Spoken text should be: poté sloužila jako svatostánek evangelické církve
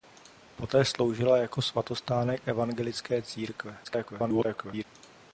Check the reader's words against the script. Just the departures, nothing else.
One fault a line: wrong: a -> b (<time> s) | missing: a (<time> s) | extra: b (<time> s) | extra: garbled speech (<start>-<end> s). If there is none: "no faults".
extra: garbled speech (3.8-4.8 s)